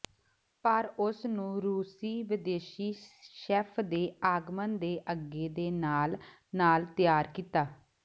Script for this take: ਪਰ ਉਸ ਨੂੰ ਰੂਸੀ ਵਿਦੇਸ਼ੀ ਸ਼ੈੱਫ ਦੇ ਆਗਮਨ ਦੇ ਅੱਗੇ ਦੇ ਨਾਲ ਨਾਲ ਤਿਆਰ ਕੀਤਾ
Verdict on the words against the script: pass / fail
pass